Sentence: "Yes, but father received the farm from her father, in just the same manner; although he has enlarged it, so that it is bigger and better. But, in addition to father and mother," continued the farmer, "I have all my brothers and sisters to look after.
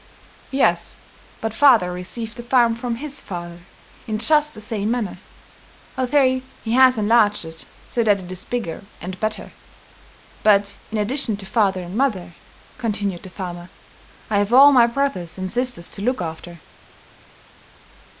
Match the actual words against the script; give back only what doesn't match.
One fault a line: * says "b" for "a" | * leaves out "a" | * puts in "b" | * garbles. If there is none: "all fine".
* says "his" for "her"